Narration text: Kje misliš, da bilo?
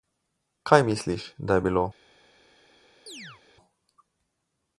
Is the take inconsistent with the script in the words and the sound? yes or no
yes